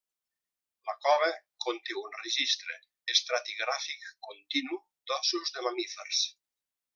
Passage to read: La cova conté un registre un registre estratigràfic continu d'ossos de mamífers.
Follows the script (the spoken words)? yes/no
no